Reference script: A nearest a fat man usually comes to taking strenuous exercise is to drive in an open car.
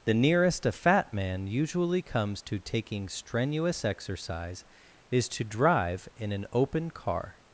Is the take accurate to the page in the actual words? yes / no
no